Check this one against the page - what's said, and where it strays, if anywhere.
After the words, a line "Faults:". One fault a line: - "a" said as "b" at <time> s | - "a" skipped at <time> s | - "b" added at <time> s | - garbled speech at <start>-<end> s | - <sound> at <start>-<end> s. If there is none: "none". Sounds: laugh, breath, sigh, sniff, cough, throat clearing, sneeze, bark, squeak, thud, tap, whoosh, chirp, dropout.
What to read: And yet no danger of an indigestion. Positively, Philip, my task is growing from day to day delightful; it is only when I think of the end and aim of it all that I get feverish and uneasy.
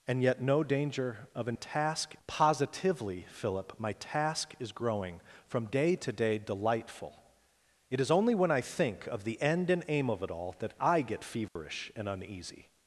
And yet no danger of an task. Positively, Philip, my task is growing from day to day delightful; it is only when I think of the end and aim of it all that I get feverish and uneasy.
Faults:
- "indigestion" said as "task" at 1.5 s
- dropout at 11.5-11.6 s